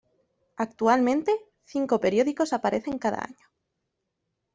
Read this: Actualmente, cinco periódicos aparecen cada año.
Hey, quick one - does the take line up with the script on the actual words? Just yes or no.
yes